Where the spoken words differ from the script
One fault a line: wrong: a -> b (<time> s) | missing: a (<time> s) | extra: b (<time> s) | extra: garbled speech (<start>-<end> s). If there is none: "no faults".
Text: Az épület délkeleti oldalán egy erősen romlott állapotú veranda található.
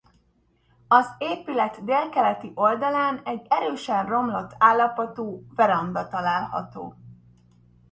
no faults